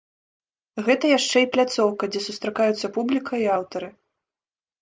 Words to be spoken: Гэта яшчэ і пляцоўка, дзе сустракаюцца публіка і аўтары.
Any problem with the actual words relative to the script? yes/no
no